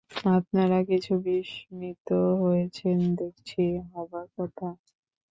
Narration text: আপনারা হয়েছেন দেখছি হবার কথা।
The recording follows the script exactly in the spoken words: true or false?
false